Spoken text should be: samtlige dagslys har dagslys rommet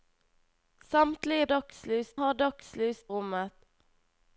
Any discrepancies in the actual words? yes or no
no